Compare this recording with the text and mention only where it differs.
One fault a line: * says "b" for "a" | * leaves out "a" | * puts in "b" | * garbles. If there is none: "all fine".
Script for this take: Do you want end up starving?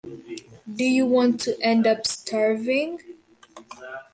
* puts in "to"